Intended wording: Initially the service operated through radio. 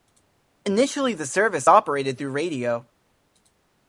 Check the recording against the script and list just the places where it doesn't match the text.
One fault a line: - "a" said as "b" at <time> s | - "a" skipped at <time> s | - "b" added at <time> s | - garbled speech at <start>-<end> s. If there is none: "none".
none